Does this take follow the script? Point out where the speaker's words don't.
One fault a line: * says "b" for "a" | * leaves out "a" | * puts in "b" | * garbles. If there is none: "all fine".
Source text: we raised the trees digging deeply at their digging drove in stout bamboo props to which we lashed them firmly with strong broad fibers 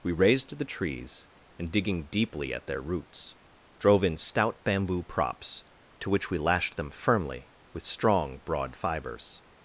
* puts in "and"
* says "roots" for "digging"